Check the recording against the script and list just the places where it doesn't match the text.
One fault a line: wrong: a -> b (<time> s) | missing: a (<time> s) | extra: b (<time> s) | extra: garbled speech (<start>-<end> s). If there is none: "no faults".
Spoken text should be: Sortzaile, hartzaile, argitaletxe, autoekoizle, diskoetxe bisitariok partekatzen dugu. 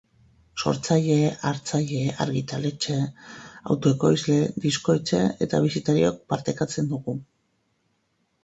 extra: eta (5.5 s)